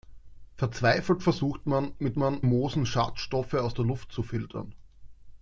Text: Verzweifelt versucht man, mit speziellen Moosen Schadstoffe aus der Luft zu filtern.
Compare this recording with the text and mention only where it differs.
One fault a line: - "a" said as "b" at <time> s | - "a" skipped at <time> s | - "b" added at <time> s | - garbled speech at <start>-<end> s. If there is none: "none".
- "speziellen" said as "man" at 2.2 s